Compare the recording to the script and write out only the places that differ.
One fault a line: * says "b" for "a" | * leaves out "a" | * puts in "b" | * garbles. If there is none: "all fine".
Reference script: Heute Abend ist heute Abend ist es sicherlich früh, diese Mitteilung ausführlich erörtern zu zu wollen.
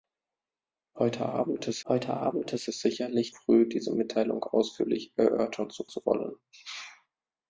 all fine